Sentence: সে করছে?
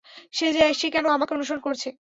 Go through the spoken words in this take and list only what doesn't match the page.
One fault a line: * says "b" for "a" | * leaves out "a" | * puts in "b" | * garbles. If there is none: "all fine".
* puts in "কেন আমাকে অনুসরণ"